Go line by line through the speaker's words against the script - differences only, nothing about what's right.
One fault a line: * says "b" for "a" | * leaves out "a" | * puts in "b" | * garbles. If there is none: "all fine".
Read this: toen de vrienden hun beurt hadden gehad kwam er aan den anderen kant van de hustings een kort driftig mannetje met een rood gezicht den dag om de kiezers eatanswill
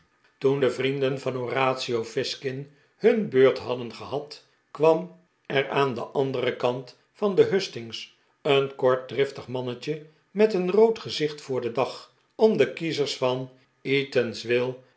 * puts in "van horatio fizkin"
* puts in "voor"
* puts in "van"